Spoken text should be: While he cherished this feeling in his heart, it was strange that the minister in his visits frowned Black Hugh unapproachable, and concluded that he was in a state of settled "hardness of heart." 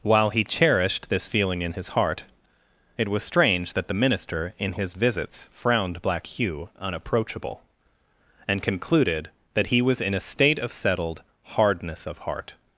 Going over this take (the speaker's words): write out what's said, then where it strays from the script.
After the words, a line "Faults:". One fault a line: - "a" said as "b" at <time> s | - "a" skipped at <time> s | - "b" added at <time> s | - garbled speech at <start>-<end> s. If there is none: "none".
While he cherished this feeling in his heart, it was strange that the minister in his visits frowned Black Hugh unapproachable, and concluded that he was in a state of settled "hardness of heart."
Faults:
none